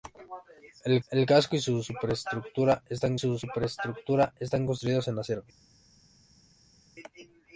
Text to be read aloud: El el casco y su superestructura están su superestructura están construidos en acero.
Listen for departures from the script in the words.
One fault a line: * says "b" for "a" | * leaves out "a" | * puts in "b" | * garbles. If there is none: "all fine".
all fine